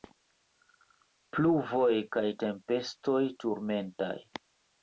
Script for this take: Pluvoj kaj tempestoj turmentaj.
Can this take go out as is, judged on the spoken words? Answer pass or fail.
pass